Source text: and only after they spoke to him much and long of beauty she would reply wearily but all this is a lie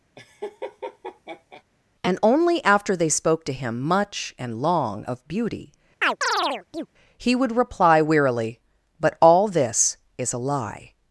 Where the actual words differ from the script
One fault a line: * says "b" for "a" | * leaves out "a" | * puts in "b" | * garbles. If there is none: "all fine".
* says "he" for "she"